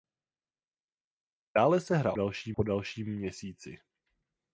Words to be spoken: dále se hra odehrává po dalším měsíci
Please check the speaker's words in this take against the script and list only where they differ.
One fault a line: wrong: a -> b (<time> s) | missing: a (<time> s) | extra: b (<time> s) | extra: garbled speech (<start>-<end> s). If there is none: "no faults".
wrong: odehrává -> dalším (2.1 s)